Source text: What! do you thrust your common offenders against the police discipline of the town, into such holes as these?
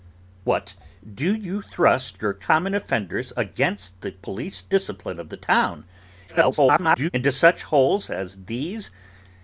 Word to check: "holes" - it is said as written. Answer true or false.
true